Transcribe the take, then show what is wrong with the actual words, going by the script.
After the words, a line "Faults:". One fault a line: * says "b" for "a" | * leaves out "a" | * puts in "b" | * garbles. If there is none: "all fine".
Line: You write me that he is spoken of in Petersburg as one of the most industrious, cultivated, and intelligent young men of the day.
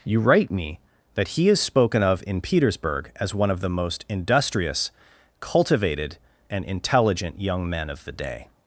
You write me that he is spoken of in Petersburg as one of the most industrious, cultivated, and intelligent young men of the day.
Faults:
all fine